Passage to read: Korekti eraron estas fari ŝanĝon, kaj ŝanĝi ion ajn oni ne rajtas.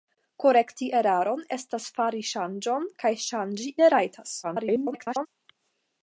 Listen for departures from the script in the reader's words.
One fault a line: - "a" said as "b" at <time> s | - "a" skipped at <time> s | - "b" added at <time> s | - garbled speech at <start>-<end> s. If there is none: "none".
- "ion ajn oni" skipped at 3.7 s
- garbled speech at 4.4-5.3 s